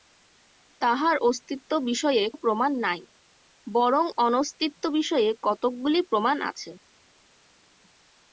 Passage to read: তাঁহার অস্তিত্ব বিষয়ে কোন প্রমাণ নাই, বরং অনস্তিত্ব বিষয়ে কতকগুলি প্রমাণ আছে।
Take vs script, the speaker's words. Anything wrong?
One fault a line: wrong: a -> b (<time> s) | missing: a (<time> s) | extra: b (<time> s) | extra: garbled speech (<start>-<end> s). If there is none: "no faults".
missing: কোন (2.2 s)